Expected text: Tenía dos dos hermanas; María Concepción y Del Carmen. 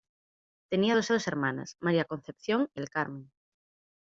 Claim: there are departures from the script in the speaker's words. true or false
false